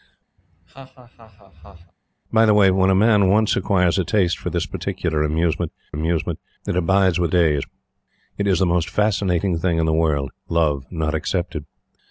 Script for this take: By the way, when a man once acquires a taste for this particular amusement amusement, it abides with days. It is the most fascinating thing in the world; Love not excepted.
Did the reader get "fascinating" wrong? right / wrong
right